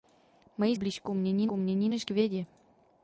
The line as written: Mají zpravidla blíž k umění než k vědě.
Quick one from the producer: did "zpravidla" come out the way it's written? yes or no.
no